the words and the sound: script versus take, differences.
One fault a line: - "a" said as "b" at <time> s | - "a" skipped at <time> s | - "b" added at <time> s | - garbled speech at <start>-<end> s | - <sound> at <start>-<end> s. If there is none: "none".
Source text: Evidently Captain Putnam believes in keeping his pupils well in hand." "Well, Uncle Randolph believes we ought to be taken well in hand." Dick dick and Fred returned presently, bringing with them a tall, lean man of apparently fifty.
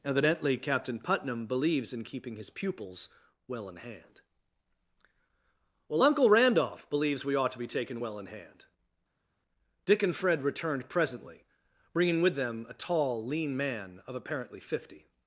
- "dick" skipped at 10.0 s